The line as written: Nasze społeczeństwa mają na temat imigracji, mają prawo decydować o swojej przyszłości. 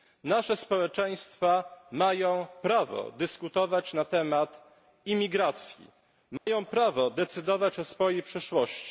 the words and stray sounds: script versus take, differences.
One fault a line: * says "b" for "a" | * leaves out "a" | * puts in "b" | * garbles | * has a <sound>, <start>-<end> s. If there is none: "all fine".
* puts in "prawo dyskutować"
* has a dropout, 6.4-6.5 s